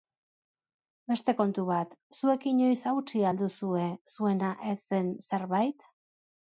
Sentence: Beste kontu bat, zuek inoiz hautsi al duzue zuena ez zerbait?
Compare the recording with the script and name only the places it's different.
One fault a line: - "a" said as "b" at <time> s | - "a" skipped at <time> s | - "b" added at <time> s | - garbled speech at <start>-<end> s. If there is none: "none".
- "zen" added at 4.9 s